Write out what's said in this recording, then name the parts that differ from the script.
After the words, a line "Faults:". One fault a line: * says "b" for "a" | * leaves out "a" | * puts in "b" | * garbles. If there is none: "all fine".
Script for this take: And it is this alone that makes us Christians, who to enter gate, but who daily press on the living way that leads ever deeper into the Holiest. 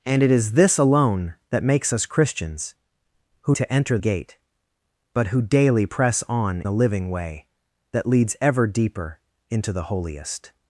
And it is this alone that makes us Christians, who to enter gate, but who daily press on the living way that leads ever deeper into the Holiest.
Faults:
all fine